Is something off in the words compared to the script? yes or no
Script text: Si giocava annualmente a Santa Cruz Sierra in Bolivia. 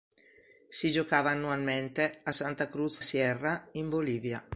no